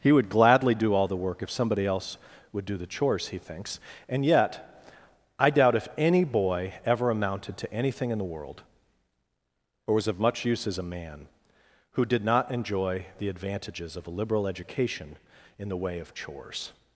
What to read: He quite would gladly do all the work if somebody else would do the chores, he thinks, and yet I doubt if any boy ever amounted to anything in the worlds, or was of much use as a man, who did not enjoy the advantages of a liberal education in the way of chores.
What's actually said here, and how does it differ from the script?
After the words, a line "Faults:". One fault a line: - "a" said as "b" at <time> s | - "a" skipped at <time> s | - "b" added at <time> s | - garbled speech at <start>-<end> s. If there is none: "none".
He would gladly do all the work if somebody else would do the chores, he thinks, and yet I doubt if any boy ever amounted to anything in the world, or was of much use as a man, who did not enjoy the advantages of a liberal education in the way of chores.
Faults:
- "quite" skipped at 0.1 s
- "worlds" said as "world" at 8.2 s